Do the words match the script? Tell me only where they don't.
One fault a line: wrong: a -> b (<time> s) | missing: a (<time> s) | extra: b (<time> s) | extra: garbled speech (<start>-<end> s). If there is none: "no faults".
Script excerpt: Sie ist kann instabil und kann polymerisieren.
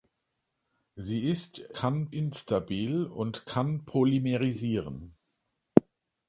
no faults